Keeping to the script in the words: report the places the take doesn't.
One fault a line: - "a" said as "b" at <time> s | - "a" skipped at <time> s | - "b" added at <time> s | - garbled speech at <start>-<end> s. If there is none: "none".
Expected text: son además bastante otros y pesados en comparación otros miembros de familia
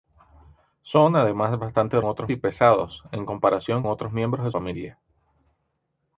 none